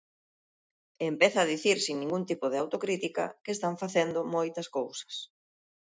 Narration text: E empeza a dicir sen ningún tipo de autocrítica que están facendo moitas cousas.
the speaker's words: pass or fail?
pass